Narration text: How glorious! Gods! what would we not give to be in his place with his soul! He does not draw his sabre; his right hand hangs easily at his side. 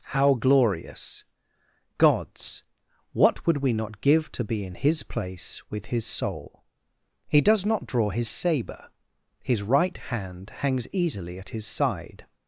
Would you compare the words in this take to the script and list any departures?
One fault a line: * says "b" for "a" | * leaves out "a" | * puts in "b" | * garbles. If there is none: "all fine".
all fine